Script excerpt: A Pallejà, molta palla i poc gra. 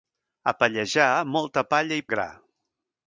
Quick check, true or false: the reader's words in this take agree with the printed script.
false